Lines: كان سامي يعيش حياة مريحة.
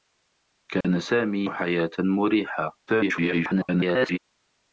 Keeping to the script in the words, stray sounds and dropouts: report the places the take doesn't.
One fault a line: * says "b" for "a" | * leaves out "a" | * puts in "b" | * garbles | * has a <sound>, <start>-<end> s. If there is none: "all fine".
* has a dropout, 0.8-0.8 s
* leaves out "يعيش"
* garbles